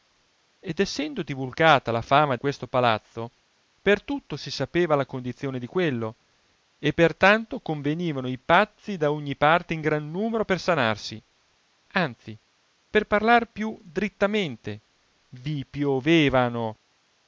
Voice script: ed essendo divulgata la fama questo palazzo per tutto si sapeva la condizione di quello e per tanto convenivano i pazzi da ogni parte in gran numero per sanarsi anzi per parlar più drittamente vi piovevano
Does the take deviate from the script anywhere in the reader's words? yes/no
no